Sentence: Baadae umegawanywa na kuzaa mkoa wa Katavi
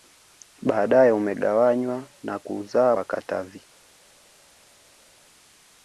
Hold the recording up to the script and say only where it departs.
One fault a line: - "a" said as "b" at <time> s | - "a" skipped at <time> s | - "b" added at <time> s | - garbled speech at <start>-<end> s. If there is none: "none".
- "mkoa" skipped at 3.0 s